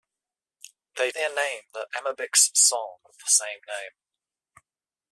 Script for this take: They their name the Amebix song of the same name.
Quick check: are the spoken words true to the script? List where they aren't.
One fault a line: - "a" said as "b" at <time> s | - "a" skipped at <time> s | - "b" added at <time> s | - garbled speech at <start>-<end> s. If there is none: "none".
none